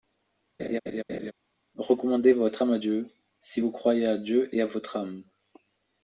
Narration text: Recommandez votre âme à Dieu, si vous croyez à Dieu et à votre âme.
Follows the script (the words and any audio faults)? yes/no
no